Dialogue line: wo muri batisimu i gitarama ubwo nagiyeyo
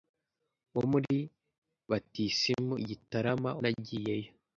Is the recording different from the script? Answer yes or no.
yes